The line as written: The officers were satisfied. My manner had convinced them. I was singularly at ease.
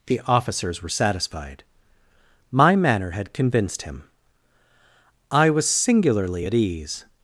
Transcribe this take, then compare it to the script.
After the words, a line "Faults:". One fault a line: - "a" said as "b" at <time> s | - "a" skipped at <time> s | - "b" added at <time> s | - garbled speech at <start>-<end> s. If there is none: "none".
The officers were satisfied. My manner had convinced him. I was singularly at ease.
Faults:
- "them" said as "him" at 3.8 s